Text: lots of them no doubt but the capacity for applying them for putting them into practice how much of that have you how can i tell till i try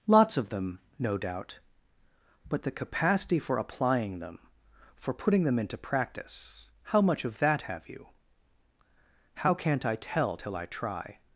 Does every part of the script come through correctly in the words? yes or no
no